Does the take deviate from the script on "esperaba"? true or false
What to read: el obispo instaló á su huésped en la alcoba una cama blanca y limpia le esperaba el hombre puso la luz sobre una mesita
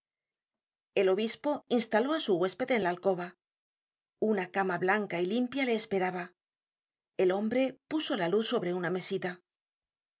false